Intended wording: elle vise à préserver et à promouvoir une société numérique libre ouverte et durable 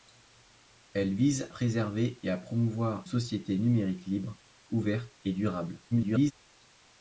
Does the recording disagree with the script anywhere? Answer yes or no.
yes